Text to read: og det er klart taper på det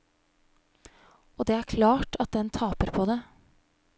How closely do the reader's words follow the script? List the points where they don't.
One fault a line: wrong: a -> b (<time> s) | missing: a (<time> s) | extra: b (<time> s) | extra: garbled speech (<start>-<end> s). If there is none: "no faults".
extra: at den (2.2 s)